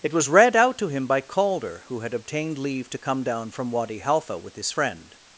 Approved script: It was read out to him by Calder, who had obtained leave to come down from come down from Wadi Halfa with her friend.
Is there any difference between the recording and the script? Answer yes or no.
yes